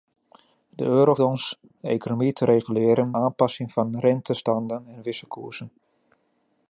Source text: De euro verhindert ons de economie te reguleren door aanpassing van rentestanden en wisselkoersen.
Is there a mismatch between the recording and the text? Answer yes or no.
yes